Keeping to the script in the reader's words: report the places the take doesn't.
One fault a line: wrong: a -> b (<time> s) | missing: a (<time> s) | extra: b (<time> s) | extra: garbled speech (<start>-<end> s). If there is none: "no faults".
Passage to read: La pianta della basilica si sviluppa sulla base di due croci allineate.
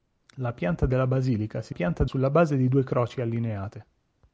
wrong: sviluppa -> pianta (1.7 s)